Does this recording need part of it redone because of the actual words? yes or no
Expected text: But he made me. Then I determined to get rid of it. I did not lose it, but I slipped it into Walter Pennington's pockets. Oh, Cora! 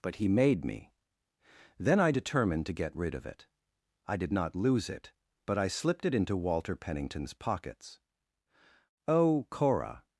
no